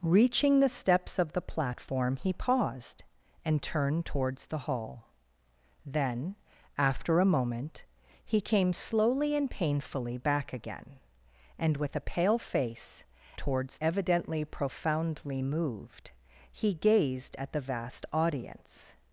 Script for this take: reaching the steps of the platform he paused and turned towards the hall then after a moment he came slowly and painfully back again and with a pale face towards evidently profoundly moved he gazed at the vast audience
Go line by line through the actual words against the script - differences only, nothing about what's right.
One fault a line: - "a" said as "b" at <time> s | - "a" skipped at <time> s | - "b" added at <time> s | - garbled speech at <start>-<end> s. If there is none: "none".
none